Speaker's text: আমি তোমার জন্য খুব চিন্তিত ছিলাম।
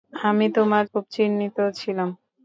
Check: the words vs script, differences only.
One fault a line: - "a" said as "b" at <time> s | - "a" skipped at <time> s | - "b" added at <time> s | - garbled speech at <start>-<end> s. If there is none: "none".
- "জন্য" skipped at 0.8 s